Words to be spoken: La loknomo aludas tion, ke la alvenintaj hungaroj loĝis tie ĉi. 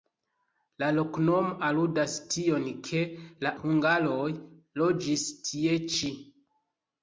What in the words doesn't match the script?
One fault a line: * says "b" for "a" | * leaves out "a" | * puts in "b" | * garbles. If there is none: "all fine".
* leaves out "alvenintaj"